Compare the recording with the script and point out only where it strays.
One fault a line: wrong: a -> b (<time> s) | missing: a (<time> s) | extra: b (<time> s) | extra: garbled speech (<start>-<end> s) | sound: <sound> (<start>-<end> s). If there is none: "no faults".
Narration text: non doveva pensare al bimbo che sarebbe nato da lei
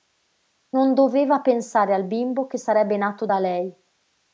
no faults